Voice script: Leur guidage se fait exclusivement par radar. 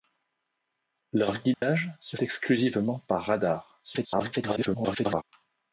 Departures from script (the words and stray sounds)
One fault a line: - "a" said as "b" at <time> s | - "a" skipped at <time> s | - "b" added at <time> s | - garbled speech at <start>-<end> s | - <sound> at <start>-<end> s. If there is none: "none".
- dropout at 1.5-1.6 s
- "fait" skipped at 2.2 s
- garbled speech at 3.8-5.2 s